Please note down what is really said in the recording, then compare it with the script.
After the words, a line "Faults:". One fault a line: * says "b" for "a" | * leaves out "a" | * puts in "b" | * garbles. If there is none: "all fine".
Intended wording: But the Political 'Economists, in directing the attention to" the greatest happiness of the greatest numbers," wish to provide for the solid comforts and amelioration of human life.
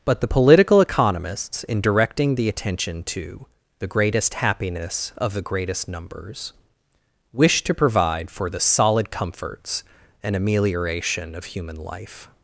But the Political 'Economists, in directing the attention to" the greatest happiness of the greatest numbers," wish to provide for the solid comforts and amelioration of human life.
Faults:
all fine